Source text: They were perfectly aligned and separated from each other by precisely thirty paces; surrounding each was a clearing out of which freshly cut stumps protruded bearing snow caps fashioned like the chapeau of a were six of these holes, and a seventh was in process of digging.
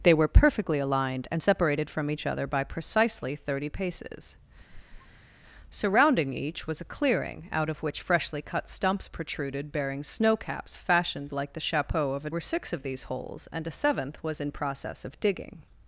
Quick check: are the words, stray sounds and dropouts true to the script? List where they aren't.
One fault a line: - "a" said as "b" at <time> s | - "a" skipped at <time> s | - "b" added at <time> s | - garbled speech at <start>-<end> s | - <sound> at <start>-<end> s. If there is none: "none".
- squeak at 4.7-5.3 s